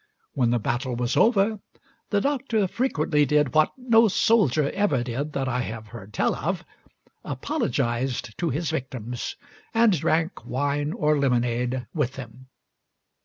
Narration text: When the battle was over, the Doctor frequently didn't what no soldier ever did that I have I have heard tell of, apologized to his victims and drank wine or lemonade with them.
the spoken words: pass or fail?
fail